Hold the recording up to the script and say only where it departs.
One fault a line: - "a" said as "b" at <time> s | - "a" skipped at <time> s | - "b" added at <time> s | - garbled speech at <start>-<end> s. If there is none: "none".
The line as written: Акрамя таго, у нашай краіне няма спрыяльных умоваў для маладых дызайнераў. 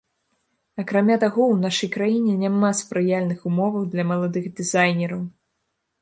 none